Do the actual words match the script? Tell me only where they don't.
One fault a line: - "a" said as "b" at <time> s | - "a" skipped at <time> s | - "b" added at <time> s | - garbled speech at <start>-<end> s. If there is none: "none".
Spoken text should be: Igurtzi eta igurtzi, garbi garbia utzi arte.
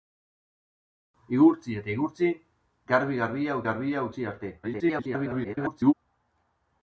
- "garbia" added at 3.7 s
- garbled speech at 4.6-5.9 s